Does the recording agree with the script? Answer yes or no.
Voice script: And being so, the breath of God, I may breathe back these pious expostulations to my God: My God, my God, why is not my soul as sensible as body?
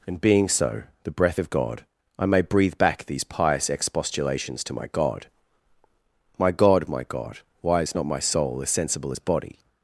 yes